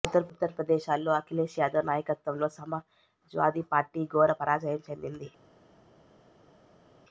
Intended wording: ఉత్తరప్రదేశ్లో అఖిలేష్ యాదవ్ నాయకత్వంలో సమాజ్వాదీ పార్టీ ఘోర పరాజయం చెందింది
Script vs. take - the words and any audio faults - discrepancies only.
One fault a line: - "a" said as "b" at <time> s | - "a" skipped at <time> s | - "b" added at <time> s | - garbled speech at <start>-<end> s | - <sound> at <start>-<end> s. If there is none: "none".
none